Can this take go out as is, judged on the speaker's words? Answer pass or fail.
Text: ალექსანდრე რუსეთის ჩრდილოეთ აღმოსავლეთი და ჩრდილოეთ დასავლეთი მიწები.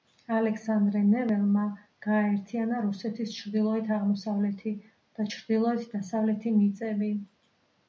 fail